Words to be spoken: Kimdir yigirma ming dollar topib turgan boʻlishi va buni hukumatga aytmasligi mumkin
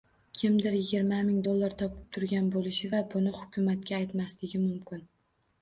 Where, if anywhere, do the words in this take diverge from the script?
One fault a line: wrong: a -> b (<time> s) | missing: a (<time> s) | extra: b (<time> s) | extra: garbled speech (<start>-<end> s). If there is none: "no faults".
no faults